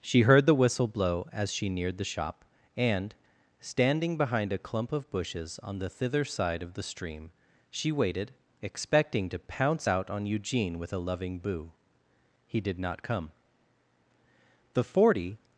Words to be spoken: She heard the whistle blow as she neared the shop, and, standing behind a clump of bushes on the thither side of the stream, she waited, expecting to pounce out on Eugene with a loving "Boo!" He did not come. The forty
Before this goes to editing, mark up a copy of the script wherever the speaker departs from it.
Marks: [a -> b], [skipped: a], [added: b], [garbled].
She heard the whistle blow as she neared the shop, and, standing behind a clump of bushes on the thither side of the stream, she waited, expecting to pounce out on Eugene with a loving "Boo!" He did not come. The forty